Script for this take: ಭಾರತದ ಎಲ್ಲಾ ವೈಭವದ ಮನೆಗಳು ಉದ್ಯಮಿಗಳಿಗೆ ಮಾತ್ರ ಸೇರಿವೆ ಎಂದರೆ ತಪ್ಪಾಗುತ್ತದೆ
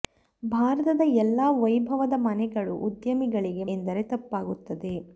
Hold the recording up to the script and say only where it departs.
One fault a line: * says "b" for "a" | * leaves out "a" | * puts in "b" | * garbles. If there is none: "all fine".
* leaves out "ಮಾತ್ರ ಸೇರಿವೆ"